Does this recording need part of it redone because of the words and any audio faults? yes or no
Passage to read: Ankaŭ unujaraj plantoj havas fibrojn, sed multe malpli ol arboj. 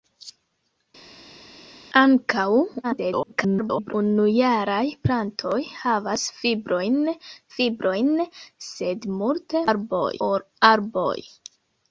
yes